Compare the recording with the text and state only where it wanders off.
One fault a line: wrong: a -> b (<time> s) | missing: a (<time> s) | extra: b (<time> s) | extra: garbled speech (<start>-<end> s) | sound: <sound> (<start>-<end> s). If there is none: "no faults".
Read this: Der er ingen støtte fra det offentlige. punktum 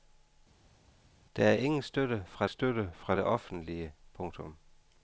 extra: støtte fra (2.5 s)